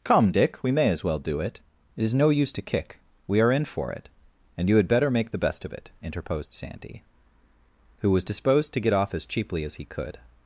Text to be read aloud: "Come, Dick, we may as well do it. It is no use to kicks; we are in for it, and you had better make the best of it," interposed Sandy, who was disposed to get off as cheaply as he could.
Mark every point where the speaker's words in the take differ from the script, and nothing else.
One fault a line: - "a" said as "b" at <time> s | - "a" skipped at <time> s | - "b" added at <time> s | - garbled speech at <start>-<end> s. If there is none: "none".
- "kicks" said as "kick" at 2.6 s